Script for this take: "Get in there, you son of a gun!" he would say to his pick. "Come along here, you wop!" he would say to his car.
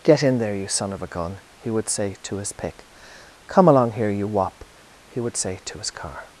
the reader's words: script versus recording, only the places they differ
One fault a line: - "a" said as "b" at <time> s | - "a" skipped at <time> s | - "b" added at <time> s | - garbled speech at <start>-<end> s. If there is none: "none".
none